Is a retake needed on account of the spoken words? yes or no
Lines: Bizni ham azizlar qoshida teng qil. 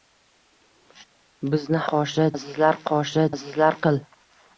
yes